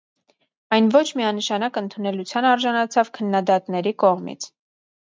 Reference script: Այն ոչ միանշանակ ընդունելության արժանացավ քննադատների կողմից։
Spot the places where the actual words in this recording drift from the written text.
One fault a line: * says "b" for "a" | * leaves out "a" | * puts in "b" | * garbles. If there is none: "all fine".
all fine